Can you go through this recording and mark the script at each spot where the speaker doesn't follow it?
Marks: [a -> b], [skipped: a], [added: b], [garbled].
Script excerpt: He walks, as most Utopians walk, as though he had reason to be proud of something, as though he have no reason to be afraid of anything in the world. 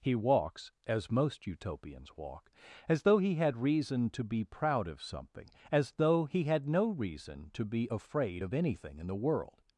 He walks, as most Utopians walk, as though he had reason to be proud of something, as though he [have -> had] no reason to be afraid of anything in the world.